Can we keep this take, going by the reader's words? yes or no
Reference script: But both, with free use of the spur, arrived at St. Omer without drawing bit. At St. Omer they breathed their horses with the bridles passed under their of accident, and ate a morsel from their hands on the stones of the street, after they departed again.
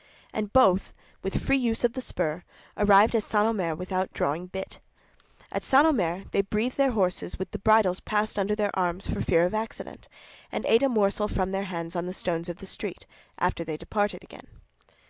no